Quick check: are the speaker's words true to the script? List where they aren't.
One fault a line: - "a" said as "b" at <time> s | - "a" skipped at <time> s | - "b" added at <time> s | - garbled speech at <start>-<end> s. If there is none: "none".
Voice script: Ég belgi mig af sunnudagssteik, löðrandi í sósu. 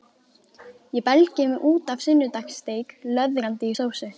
- "út" added at 1.7 s